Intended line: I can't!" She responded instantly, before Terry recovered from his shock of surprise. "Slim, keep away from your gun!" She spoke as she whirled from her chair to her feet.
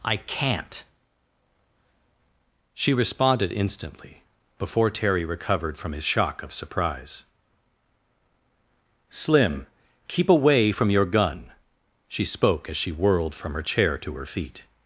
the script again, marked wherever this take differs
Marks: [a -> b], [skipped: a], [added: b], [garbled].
I can't!" She responded instantly, before Terry recovered from his shock of surprise. "Slim, keep away from your gun!" She spoke as she whirled from her chair to her feet.